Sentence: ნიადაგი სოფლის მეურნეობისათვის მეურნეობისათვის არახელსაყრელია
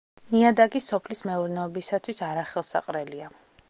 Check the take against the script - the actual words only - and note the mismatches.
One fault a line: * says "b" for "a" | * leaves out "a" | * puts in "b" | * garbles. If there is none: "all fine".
* leaves out "მეურნეობისათვის"